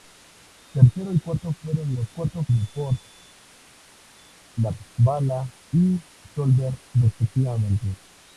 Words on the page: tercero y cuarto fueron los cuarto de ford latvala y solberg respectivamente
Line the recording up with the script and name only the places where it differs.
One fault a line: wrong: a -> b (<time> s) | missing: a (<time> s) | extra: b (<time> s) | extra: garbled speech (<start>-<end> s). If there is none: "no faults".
no faults